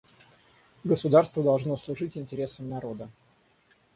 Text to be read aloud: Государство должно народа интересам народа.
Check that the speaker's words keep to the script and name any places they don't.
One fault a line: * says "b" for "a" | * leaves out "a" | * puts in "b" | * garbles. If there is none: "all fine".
* says "служить" for "народа"